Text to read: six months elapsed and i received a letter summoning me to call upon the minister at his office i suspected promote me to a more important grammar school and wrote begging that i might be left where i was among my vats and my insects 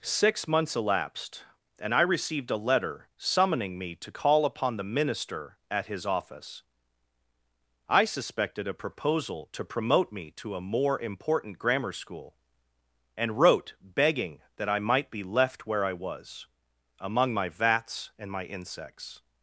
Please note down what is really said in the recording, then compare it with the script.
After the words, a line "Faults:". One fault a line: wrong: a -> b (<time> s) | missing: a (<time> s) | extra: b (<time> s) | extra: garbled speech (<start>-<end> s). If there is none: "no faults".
six months elapsed and i received a letter summoning me to call upon the minister at his office i suspected a proposal to promote me to a more important grammar school and wrote begging that i might be left where i was among my vats and my insects
Faults:
extra: a proposal to (8.7 s)